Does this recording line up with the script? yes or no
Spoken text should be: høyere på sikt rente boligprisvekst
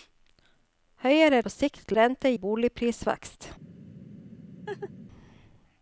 yes